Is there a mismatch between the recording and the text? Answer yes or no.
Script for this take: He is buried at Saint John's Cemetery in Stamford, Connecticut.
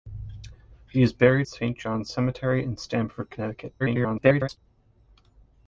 yes